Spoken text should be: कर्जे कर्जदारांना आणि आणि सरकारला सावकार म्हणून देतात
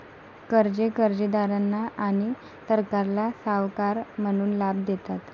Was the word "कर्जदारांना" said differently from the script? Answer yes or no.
no